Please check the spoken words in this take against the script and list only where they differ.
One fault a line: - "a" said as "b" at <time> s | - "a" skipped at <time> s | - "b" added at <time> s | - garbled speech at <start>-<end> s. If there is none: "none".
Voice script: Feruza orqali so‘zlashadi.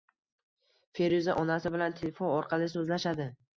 - "onasi bilan telefon" added at 1.4 s